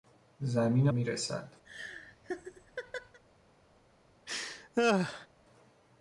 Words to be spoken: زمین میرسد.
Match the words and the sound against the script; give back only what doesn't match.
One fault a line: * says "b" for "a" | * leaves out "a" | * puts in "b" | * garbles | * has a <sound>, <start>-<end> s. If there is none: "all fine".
* has a laugh, 1.6-3.2 s
* has a laugh, 4.3-5.3 s